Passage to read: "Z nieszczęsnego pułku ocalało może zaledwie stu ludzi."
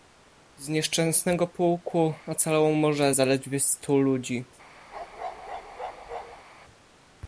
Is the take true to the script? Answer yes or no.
yes